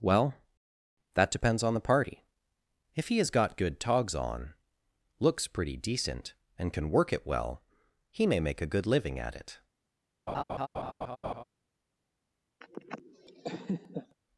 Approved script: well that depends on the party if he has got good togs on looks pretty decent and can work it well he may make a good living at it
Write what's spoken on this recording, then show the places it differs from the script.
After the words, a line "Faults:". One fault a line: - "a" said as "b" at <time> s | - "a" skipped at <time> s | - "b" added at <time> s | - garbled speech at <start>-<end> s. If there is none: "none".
well that depends on the party if he has got good togs on looks pretty decent and can work it well he may make a good living at it
Faults:
none